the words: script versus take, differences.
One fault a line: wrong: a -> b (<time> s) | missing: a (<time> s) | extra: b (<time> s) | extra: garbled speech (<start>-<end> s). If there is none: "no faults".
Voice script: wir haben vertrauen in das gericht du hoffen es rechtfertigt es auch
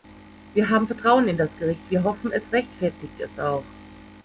wrong: du -> wir (1.9 s)